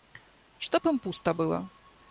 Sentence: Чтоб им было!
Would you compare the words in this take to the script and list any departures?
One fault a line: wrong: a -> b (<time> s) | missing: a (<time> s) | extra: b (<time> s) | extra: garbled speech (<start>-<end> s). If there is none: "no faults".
extra: пусто (1.0 s)